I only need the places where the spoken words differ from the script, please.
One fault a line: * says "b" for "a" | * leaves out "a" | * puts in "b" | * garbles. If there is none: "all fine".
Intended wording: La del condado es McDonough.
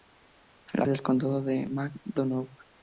all fine